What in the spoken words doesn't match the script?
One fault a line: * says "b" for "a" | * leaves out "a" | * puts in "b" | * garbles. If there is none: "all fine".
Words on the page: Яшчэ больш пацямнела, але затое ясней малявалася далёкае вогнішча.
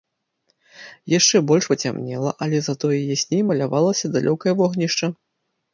all fine